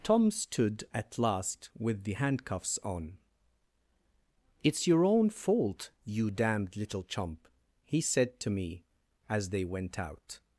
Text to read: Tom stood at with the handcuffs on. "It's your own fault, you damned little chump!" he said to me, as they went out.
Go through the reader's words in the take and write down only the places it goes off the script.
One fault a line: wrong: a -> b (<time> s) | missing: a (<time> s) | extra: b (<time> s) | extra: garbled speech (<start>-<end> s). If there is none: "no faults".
extra: last (1.2 s)